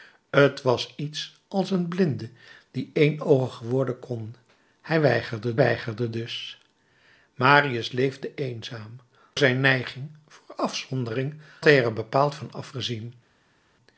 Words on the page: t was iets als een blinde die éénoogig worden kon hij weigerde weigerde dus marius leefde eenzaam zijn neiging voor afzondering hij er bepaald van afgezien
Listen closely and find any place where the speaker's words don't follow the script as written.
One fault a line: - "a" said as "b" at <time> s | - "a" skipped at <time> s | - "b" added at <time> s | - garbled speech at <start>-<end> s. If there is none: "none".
none